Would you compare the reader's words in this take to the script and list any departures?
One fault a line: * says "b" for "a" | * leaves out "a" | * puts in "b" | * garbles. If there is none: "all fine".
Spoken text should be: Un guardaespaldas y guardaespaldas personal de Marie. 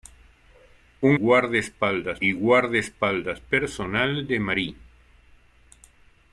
all fine